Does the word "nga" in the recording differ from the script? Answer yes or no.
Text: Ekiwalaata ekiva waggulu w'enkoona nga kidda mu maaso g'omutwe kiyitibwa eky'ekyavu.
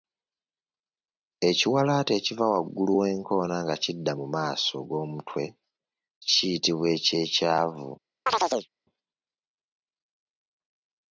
no